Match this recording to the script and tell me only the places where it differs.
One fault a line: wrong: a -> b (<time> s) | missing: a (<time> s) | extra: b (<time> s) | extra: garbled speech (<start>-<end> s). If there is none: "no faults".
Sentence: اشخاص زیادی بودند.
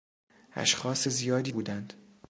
no faults